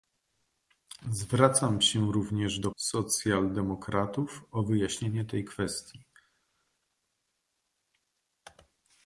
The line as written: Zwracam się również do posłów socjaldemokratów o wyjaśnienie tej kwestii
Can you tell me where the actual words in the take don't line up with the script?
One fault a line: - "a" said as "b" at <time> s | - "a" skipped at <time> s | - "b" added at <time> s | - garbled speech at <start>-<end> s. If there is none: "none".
- "posłów" skipped at 2.7 s